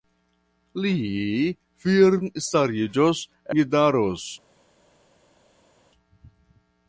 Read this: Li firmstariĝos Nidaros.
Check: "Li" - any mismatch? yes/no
no